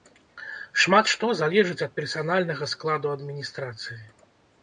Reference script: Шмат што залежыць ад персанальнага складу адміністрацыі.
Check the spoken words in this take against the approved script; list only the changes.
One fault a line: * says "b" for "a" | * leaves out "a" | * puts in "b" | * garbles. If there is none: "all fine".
all fine